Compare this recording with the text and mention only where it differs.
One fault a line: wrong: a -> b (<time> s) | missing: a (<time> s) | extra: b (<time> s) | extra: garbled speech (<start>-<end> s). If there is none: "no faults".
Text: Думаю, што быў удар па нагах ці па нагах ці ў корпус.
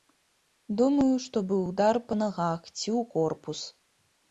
missing: па нагах ці (2.9 s)